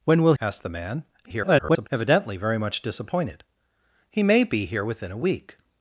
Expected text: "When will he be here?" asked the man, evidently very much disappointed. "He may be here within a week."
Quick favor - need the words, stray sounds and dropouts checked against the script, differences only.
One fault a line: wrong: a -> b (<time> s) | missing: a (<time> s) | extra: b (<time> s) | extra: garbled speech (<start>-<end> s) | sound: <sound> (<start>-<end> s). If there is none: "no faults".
missing: he be here (0.3 s)
extra: garbled speech (1.2-1.9 s)